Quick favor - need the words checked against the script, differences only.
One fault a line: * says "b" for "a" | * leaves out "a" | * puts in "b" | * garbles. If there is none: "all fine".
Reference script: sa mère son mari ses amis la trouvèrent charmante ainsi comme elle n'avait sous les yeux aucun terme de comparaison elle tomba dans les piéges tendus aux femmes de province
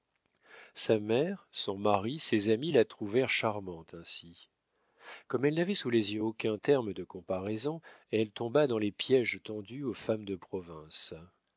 all fine